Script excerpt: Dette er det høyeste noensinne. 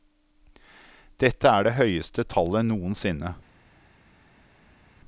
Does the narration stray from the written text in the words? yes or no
yes